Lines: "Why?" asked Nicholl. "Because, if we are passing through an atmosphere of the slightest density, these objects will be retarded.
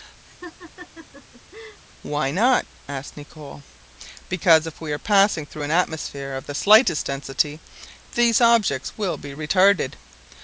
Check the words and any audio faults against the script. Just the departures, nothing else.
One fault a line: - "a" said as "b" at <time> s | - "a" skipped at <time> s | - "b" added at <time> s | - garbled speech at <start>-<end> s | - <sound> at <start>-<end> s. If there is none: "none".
- laugh at 0.3-1.8 s
- "not" added at 2.3 s